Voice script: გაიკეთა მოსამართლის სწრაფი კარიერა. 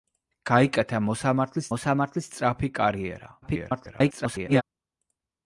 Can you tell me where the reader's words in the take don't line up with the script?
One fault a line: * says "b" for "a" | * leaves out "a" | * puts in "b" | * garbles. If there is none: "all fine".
* puts in "მოსამართლის"
* garbles